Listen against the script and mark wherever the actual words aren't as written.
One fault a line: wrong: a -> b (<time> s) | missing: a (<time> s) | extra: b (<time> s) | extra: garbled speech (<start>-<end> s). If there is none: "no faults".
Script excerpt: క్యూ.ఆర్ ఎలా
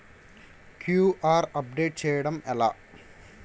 extra: అప్డేట్ చేయడం (1.6 s)